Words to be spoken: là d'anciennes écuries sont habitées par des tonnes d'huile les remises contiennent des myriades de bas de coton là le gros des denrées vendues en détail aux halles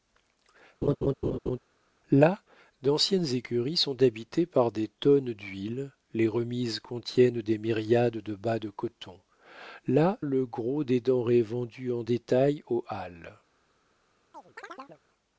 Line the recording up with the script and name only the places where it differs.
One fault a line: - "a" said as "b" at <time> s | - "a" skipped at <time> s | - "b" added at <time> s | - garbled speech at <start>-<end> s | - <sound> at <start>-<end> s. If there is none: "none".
- laugh at 0.8-1.6 s
- chirp at 14.3-15.0 s